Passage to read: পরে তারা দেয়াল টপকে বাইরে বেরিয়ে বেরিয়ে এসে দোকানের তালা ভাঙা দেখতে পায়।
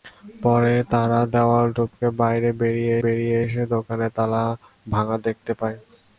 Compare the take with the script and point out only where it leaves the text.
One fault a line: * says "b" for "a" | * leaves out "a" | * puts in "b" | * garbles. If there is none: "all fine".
all fine